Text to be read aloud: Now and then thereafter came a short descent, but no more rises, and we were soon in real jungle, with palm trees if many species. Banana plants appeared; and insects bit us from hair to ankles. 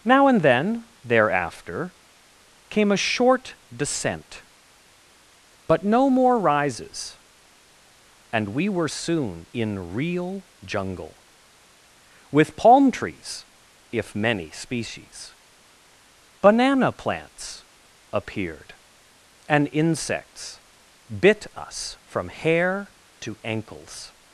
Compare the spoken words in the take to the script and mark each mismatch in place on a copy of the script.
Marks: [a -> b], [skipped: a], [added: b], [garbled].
Now and then thereafter came a short descent, but no more rises, and we were soon in real jungle, with palm trees if many species. Banana plants appeared; and insects bit us from hair to ankles.